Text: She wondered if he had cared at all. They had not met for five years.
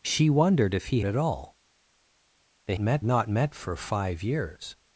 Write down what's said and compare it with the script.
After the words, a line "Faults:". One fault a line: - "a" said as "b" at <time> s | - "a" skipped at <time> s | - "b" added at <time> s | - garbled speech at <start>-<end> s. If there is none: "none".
She wondered if he at all. They met not met for five years.
Faults:
- "had cared" skipped at 1.0 s
- "had" said as "met" at 2.8 s